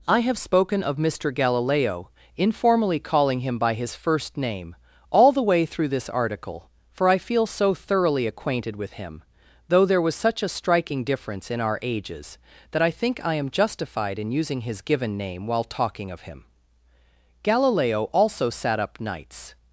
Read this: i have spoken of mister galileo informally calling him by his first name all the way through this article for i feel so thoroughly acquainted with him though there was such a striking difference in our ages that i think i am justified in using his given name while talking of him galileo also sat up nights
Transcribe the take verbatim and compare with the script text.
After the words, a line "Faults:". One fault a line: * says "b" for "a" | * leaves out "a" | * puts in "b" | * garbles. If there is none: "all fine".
i have spoken of mister galileo informally calling him by his first name all the way through this article for i feel so thoroughly acquainted with him though there was such a striking difference in our ages that i think i am justified in using his given name while talking of him galileo also sat up nights
Faults:
all fine